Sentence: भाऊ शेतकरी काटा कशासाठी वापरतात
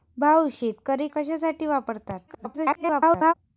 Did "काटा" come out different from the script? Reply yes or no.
yes